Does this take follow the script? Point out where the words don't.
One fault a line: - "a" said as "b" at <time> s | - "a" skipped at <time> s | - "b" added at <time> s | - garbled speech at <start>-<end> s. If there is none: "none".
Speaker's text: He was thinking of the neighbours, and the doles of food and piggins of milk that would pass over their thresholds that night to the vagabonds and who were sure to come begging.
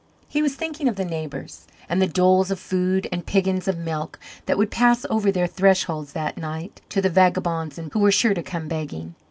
none